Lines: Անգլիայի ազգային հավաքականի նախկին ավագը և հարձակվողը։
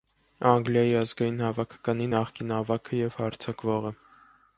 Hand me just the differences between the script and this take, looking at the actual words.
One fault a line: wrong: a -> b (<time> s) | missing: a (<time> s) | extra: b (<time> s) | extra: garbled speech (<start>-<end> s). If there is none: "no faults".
no faults